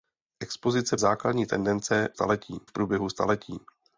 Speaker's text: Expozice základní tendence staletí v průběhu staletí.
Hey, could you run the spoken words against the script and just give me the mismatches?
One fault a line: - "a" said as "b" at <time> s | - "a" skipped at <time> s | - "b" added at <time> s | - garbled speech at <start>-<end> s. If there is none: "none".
none